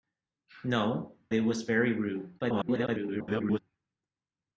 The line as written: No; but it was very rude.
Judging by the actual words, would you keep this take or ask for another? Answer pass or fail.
fail